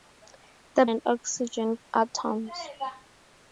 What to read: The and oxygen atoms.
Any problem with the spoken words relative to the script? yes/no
no